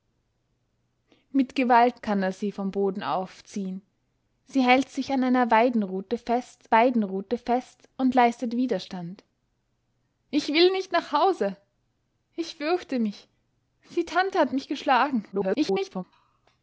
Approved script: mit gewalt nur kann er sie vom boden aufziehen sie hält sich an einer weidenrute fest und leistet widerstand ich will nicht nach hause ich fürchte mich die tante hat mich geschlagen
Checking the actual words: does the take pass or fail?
fail